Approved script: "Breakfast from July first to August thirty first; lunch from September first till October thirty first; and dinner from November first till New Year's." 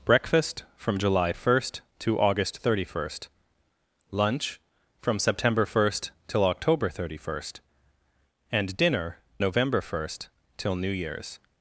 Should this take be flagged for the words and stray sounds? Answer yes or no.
yes